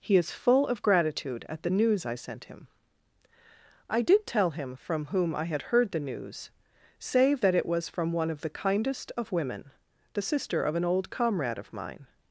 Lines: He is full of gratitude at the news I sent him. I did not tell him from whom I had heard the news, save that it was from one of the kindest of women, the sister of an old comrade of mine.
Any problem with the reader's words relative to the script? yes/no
yes